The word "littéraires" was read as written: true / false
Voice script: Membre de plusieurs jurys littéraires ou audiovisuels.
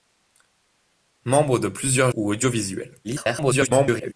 false